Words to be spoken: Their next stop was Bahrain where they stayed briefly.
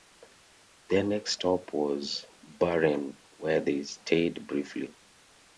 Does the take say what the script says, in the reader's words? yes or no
yes